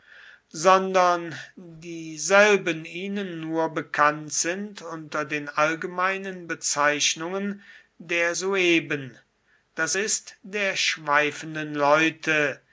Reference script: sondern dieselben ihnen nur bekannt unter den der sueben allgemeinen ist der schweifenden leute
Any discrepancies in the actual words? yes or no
yes